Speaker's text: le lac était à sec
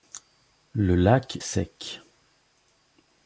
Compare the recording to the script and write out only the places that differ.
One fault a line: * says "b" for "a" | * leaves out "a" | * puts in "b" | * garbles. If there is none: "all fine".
* leaves out "était à"